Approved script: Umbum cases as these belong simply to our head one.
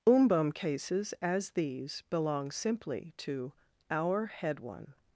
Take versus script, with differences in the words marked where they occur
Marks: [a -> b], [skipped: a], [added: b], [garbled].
Umbum cases as these belong simply to our head one.